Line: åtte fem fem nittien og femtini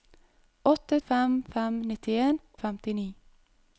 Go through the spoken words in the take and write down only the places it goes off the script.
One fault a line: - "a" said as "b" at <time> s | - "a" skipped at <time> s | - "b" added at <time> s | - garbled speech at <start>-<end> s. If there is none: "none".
none